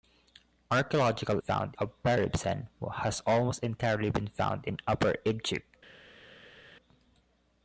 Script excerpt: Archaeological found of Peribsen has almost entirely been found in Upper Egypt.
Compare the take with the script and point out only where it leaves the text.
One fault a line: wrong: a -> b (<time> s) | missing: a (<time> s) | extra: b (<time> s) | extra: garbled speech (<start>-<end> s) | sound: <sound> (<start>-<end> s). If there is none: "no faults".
no faults